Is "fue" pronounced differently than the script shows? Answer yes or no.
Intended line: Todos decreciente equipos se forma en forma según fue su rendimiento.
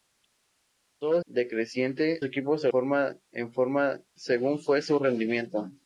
no